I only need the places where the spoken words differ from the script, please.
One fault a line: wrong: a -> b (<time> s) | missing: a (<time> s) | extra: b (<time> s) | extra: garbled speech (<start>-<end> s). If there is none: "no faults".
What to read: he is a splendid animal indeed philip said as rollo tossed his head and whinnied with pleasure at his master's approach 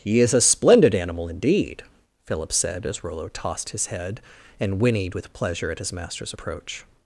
no faults